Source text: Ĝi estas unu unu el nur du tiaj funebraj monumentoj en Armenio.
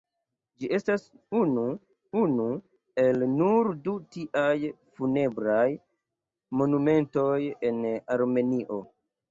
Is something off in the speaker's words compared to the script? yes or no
no